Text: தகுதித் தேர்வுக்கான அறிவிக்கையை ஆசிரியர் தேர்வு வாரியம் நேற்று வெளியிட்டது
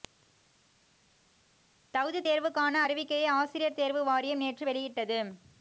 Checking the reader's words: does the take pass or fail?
pass